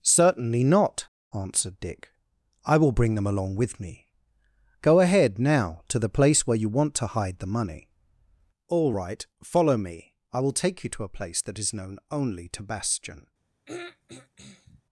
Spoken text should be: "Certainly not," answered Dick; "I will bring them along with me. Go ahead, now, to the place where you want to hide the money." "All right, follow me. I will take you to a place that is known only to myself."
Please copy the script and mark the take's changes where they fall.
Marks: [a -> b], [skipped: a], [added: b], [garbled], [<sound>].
"Certainly not," answered Dick; "I will bring them along with me. Go ahead, now, to the place where you want to hide the money." "All right, follow me. I will take you to a place that is known only to [myself." -> bastion] [throat clearing]